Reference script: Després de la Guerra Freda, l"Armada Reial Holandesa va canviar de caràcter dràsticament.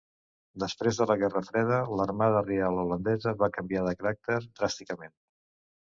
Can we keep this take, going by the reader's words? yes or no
yes